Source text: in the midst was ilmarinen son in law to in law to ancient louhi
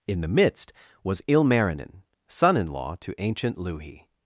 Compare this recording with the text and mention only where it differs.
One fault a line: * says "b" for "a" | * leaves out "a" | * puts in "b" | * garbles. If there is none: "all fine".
* leaves out "in law to"